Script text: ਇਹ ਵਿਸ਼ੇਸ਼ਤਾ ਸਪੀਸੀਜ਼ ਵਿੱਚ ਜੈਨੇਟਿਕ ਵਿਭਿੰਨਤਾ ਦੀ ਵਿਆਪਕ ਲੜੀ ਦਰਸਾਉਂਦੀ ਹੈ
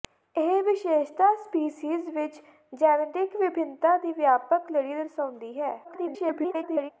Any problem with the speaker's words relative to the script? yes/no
yes